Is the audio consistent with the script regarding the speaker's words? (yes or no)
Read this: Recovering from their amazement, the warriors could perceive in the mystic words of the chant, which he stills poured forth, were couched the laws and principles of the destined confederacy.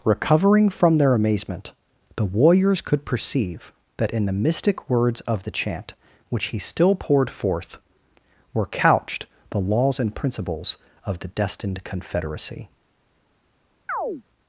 no